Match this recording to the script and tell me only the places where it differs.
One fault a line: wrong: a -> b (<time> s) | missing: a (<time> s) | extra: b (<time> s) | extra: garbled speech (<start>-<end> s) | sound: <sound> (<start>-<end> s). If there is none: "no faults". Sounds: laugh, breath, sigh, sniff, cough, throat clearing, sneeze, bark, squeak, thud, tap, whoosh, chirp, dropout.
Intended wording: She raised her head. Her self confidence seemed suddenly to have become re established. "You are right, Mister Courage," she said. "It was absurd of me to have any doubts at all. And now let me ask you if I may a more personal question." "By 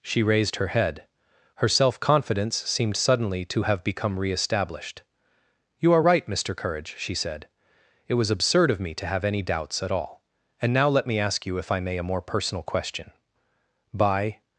no faults